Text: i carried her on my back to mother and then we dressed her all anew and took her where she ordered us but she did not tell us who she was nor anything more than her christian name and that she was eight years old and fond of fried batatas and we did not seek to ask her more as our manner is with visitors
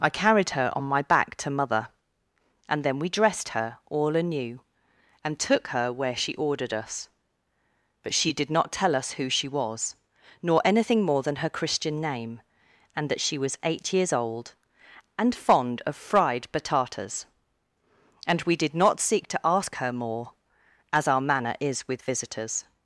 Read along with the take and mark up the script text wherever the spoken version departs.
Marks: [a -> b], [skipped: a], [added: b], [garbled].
i carried her on my back to mother and then we dressed her all anew and took her where she ordered us but she did not tell us who she was nor anything more than her christian name and that she was eight years old and fond of fried batatas and we did not seek to ask her more as our manner is with visitors